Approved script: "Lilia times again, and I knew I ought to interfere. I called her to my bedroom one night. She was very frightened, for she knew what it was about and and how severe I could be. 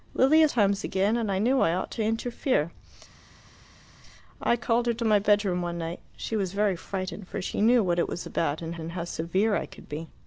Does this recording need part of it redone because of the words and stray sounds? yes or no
no